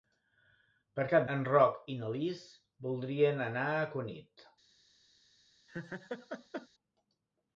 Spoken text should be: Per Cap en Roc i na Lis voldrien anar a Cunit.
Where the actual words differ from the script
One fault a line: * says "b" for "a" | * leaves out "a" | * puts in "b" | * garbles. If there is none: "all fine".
all fine